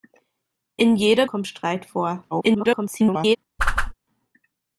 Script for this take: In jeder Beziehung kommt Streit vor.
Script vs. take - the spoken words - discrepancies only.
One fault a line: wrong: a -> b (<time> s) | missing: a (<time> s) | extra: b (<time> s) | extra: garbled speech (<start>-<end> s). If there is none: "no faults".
missing: Beziehung (1.3 s)
extra: garbled speech (2.3-3.4 s)